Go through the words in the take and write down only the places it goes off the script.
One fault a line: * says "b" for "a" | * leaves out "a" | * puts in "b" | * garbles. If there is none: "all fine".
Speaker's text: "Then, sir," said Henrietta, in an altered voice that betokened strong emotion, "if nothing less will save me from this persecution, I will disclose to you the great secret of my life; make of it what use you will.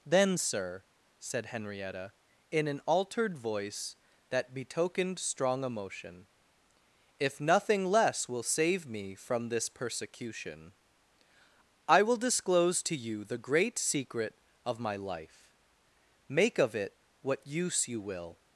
all fine